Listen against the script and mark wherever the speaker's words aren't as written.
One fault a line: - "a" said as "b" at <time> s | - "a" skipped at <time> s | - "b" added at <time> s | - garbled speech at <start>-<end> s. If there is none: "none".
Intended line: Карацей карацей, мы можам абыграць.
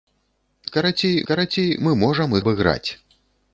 none